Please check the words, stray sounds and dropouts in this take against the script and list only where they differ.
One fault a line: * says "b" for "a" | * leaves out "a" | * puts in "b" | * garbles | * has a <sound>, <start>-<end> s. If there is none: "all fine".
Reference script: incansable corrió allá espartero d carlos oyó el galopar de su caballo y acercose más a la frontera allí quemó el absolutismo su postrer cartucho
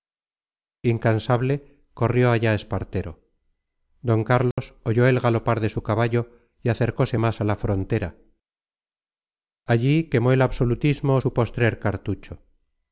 * has a dropout, 4.5-4.6 s